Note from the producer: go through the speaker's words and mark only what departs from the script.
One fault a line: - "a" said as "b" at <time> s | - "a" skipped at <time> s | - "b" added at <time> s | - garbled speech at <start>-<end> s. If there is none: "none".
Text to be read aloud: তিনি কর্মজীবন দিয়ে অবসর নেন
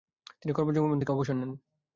- "দিয়ে" said as "থেকে" at 1.0 s